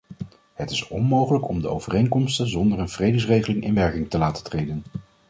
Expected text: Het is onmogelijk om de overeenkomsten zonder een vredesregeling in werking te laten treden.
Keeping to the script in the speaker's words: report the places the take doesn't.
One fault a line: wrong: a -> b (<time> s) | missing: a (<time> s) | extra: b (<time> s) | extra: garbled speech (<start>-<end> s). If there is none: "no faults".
no faults